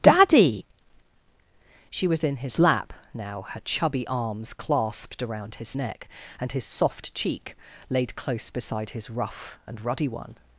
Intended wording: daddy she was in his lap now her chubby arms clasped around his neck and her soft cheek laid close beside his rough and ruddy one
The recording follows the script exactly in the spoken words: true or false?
false